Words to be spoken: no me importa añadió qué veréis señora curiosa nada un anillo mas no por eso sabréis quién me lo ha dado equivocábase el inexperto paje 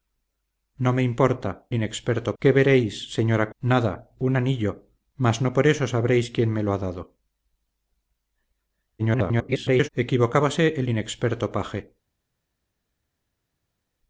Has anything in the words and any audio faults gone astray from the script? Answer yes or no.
yes